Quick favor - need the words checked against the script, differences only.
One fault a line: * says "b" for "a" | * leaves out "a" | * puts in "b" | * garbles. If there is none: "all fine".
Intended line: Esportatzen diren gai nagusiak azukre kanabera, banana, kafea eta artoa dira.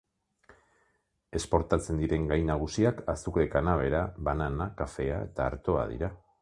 all fine